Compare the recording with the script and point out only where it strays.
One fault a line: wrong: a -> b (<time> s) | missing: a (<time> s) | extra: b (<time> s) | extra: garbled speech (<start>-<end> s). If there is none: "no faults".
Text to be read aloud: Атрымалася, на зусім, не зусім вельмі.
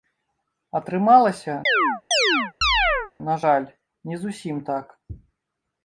wrong: зусім -> жаль (3.4 s)
wrong: вельмі -> так (4.7 s)